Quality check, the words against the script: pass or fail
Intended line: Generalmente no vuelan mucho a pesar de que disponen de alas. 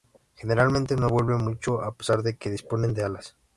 pass